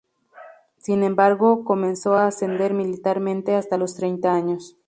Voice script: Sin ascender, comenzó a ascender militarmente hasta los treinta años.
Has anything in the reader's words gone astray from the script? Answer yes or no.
yes